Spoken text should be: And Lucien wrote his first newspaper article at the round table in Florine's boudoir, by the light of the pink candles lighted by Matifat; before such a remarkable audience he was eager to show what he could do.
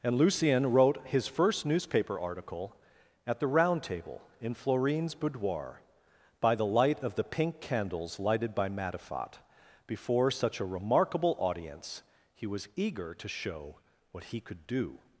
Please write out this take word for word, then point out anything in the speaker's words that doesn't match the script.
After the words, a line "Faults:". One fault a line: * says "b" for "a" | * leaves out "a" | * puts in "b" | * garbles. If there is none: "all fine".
And Lucien wrote his first newspaper article at the round table in Florine's boudoir, by the light of the pink candles lighted by Matifat; before such a remarkable audience he was eager to show what he could do.
Faults:
all fine